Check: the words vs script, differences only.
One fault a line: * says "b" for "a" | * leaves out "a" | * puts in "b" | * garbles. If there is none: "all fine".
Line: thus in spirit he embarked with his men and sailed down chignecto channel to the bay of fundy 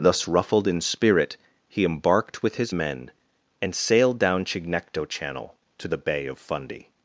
* puts in "ruffled"